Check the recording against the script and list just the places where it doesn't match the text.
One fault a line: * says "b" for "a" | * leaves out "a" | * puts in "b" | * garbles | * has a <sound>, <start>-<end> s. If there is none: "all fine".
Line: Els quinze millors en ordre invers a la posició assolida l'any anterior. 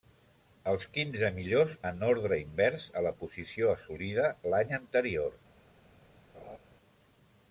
* has a laugh, 6.3-6.6 s